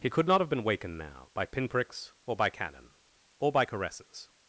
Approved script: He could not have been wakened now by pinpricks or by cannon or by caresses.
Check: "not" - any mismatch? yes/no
no